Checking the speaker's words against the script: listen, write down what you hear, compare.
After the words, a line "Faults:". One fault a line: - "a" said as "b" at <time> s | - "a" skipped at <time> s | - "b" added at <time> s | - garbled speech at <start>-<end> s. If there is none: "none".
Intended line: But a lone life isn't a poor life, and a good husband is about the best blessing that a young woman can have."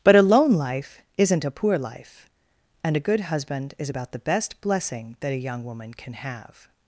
But a lone life isn't a poor life, and a good husband is about the best blessing that a young woman can have."
Faults:
none